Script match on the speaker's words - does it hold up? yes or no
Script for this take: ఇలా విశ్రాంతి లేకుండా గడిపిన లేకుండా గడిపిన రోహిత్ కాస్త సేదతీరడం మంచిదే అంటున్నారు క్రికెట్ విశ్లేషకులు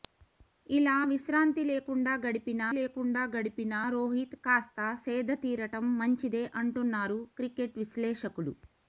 yes